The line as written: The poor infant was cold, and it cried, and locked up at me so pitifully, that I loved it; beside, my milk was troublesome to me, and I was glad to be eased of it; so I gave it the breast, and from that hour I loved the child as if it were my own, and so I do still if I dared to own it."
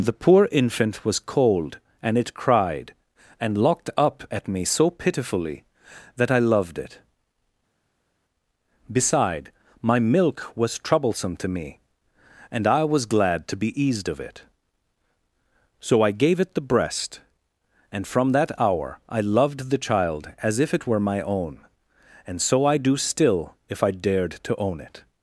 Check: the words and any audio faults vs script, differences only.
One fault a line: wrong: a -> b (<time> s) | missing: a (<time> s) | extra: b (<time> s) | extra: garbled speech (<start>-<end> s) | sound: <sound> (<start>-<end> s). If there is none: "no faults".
no faults